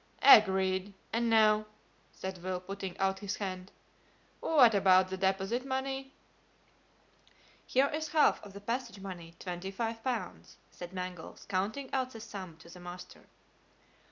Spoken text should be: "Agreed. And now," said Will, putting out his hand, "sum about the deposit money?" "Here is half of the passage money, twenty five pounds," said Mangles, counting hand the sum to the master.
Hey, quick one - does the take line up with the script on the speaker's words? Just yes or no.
no